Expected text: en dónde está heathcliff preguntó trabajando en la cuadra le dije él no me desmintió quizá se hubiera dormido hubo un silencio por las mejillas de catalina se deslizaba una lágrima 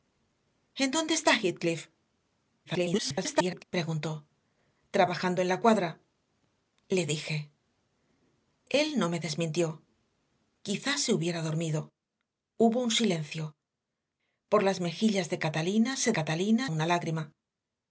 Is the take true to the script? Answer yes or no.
no